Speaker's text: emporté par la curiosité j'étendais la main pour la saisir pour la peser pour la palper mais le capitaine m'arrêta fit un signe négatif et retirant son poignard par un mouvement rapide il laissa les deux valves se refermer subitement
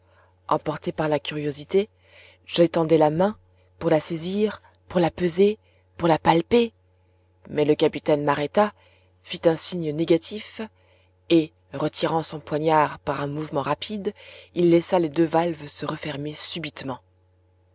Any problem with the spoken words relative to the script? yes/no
no